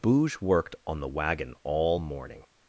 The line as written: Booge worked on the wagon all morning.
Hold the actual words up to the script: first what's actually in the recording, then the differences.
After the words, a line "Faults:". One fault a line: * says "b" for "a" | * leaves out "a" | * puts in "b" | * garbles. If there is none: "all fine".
Booge worked on the wagon all morning.
Faults:
all fine